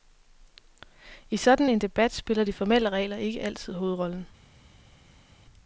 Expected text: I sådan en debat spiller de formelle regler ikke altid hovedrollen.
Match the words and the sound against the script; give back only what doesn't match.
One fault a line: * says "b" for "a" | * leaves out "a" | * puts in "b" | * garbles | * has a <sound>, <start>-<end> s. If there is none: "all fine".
all fine